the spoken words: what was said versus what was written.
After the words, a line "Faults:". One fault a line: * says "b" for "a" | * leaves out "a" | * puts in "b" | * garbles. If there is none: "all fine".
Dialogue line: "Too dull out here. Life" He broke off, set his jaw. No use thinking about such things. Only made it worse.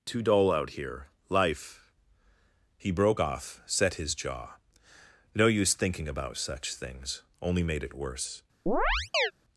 "Too dull out here. Life" He broke off, set his jaw. No use thinking about such things. Only made it worse.
Faults:
all fine